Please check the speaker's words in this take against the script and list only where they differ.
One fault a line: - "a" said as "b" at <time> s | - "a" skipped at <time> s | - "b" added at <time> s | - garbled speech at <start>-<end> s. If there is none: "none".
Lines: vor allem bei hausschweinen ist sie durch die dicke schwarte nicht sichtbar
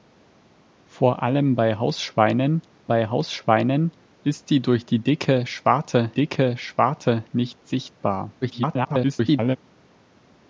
- "bei hausschweinen" added at 2.8 s
- "dicke schwarte" added at 6.1 s
- garbled speech at 8.4-9.6 s